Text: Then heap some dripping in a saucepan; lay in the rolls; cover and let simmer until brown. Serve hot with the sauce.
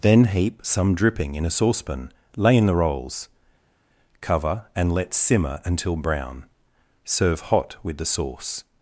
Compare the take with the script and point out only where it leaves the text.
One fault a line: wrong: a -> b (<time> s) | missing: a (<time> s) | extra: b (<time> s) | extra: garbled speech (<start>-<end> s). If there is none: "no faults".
no faults